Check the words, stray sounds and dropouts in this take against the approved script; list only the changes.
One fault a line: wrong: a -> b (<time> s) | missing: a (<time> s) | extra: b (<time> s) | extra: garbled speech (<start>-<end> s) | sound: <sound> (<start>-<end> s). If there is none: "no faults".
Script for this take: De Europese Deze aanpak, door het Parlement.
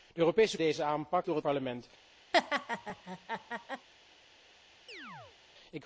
sound: laugh (2.3-3.9 s)
sound: chirp (4.9-5.4 s)